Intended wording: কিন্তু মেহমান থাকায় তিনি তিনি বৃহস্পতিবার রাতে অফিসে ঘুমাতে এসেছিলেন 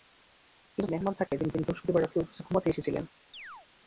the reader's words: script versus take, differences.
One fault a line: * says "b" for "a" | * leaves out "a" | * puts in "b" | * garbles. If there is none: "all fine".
all fine